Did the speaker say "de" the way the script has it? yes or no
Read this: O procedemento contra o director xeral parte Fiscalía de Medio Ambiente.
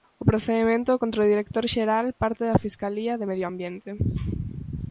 yes